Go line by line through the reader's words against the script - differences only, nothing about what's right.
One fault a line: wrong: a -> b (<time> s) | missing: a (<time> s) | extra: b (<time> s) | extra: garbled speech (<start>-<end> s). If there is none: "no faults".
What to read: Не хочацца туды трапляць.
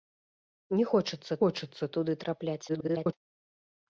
extra: хочацца (1.4 s)
extra: garbled speech (2.7-3.1 s)